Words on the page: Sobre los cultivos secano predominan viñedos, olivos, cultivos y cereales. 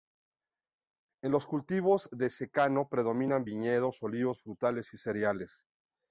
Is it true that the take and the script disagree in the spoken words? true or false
true